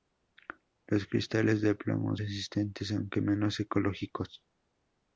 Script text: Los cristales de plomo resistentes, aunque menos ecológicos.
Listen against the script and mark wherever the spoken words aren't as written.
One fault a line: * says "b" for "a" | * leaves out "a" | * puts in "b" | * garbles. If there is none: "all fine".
all fine